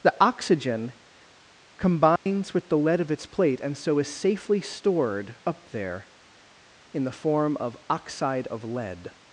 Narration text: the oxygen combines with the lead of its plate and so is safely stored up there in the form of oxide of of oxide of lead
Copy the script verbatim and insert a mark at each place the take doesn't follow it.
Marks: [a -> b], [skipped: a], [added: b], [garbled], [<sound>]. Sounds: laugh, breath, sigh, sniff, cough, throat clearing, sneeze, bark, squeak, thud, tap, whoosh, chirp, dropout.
the oxygen combines [dropout] with the lead of its plate and so is safely stored up there in the form of oxide of [skipped: of oxide of] lead